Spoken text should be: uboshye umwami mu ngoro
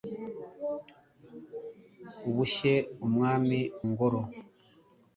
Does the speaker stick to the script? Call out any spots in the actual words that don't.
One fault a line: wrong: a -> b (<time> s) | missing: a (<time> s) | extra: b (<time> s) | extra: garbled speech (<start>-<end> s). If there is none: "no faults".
missing: mu (3.6 s)